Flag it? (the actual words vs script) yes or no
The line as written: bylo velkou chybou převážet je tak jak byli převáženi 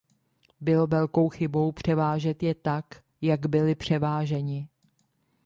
no